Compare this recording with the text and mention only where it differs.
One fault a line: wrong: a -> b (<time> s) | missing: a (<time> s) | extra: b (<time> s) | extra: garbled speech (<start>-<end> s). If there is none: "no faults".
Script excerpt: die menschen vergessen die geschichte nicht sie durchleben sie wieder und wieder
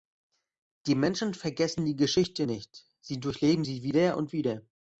no faults